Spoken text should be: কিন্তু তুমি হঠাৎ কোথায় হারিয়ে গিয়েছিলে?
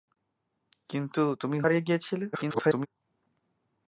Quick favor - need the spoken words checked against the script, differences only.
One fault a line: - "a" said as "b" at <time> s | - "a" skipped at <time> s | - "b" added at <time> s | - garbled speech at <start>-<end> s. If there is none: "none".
- "হঠাৎ কোথায়" skipped at 1.6 s
- garbled speech at 2.3-2.9 s